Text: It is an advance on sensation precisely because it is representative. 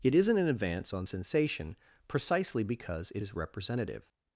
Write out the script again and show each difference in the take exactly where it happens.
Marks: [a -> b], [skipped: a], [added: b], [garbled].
It [is -> isn't] an advance on sensation precisely because it is representative.